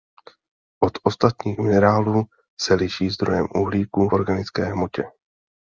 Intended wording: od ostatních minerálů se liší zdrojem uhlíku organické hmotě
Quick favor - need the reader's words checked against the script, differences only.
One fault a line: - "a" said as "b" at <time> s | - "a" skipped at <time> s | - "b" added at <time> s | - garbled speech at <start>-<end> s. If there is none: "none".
none